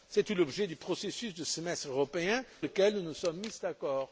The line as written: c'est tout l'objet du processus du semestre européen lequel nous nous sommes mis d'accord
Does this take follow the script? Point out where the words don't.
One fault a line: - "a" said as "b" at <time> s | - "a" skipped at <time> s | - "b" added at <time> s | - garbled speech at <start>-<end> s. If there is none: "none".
none